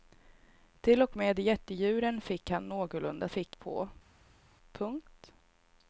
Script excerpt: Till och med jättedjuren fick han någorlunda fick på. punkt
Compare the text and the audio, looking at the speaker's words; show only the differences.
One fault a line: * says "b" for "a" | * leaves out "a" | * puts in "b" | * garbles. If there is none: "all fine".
all fine